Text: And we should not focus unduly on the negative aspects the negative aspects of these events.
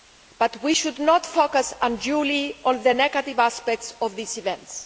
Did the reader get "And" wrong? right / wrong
wrong